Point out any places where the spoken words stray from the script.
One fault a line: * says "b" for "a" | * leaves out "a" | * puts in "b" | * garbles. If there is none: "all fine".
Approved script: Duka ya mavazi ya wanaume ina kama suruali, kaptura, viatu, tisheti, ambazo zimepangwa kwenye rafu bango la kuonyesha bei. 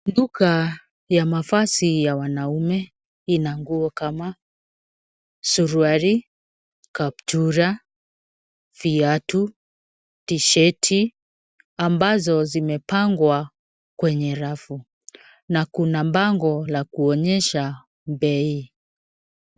* puts in "nguo"
* puts in "na kuna"